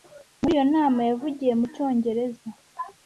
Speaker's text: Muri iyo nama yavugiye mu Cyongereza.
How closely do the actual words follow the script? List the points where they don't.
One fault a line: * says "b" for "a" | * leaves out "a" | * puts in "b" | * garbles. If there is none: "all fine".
all fine